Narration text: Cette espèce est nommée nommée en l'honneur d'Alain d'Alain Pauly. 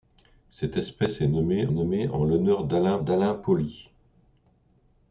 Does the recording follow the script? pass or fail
pass